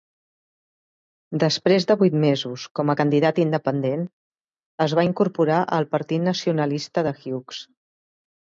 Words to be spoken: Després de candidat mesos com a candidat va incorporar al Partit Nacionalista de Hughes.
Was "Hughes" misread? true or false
false